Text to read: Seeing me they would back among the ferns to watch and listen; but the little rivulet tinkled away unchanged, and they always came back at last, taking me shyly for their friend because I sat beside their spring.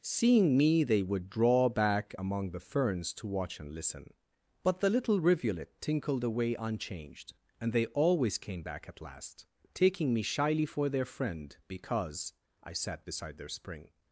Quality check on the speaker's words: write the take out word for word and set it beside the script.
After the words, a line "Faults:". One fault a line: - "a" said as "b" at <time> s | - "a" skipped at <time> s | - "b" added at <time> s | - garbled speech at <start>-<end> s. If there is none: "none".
Seeing me they would draw back among the ferns to watch and listen; but the little rivulet tinkled away unchanged, and they always came back at last, taking me shyly for their friend because I sat beside their spring.
Faults:
- "draw" added at 1.3 s